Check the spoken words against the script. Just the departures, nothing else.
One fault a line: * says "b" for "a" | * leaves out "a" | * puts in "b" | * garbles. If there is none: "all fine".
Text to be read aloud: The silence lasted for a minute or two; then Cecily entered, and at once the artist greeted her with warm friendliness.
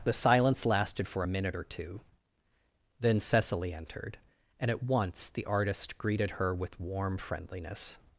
all fine